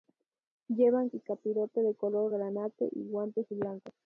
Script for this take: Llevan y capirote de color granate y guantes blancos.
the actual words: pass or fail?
pass